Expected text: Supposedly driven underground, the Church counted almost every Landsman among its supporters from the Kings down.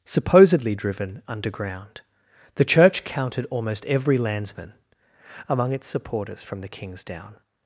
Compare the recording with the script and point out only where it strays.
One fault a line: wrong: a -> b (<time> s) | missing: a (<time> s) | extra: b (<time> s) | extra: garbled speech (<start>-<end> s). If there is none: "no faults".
no faults